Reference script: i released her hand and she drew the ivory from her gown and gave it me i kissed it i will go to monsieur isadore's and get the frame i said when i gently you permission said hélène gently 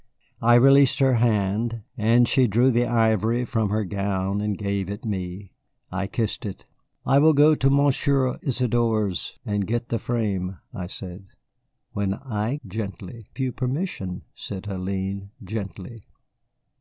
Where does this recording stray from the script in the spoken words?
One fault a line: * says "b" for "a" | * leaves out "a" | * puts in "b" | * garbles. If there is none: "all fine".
all fine